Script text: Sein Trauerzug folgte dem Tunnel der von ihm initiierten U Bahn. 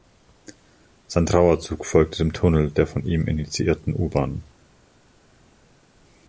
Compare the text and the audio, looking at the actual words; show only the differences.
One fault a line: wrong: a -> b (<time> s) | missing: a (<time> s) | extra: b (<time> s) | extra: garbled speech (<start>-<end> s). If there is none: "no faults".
no faults